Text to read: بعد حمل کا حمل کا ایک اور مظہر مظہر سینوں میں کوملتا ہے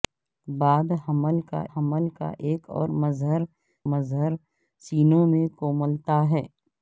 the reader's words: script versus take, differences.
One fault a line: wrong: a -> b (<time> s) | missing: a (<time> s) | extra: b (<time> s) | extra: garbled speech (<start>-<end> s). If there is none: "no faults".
no faults